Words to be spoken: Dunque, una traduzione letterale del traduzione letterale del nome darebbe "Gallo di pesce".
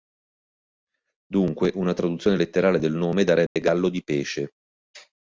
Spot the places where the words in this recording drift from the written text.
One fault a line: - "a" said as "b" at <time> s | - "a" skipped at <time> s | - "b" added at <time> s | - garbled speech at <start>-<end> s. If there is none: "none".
- "traduzione letterale del" skipped at 2.9 s